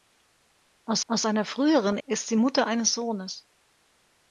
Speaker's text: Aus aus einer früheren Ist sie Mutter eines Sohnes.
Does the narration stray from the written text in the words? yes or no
no